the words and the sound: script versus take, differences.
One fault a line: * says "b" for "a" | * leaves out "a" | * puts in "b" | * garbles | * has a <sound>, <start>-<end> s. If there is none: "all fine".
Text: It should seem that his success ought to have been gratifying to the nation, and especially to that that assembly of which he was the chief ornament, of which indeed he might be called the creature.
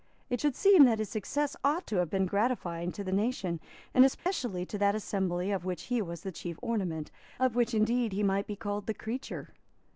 * has a dropout, 4.2-4.3 s
* leaves out "that"